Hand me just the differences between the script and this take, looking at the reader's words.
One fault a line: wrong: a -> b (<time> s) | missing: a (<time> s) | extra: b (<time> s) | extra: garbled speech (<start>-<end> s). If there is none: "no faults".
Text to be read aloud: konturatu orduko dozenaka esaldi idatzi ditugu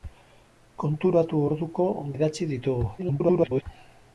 missing: dozenaka esaldi (1.9 s)
extra: garbled speech (3.0-3.6 s)